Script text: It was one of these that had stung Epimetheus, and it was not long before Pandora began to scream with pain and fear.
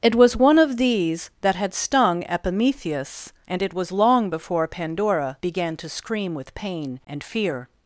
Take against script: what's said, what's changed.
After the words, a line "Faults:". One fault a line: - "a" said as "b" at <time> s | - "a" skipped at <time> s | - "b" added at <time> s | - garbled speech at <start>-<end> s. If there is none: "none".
It was one of these that had stung Epimetheus, and it was long before Pandora began to scream with pain and fear.
Faults:
- "not" skipped at 3.9 s